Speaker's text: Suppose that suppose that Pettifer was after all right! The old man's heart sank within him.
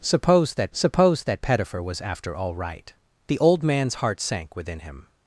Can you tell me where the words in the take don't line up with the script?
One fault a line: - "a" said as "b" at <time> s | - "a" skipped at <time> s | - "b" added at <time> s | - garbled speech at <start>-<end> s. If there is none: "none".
none